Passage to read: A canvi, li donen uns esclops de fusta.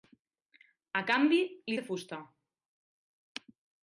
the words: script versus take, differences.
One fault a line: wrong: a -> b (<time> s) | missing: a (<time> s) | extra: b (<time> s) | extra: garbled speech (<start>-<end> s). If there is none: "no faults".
missing: donen uns esclops (1.8 s)